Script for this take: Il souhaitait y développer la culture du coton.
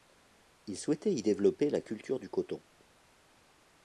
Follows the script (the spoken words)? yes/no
yes